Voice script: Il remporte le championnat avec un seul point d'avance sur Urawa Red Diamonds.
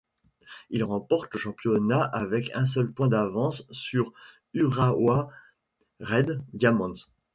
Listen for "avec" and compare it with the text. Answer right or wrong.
right